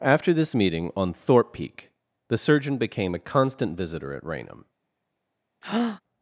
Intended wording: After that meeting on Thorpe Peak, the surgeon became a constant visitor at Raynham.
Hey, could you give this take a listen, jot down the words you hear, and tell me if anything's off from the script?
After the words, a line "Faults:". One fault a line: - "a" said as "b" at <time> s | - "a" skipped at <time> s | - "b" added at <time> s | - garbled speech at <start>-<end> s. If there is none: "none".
After this meeting on Thorpe Peak, the surgeon became a constant visitor at Raynham.
Faults:
- "that" said as "this" at 0.3 s